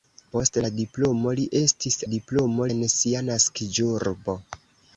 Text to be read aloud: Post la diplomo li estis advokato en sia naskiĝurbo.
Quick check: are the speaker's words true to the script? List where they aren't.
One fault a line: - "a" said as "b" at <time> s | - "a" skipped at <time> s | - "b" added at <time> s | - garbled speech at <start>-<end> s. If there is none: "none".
- "advokato" said as "diplomo" at 2.1 s